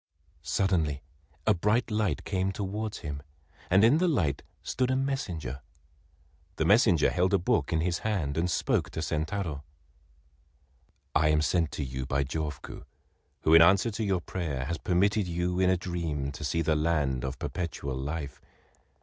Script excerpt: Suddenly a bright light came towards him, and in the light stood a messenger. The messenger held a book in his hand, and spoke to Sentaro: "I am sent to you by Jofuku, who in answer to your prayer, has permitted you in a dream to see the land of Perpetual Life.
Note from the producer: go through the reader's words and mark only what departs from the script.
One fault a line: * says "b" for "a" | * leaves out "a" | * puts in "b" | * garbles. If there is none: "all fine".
all fine